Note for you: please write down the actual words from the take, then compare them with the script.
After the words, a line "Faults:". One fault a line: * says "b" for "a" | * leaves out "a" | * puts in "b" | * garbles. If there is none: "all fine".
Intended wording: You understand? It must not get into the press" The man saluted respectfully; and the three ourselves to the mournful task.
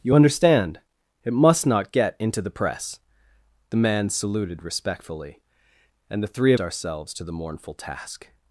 You understand? It must not get into the press" The man saluted respectfully; and the three ourselves to the mournful task.
Faults:
all fine